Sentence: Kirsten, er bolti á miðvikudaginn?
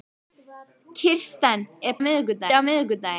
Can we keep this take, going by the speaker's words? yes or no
no